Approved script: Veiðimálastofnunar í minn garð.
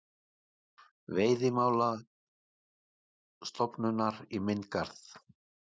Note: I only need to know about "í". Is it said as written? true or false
true